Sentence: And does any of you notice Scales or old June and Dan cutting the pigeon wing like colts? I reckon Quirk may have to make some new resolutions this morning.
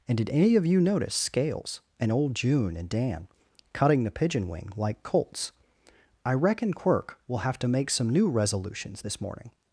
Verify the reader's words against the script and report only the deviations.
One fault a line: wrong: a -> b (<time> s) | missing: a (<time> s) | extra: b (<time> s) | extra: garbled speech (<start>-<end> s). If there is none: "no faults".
wrong: does -> did (0.2 s)
wrong: or -> and (2.0 s)
wrong: may -> will (7.3 s)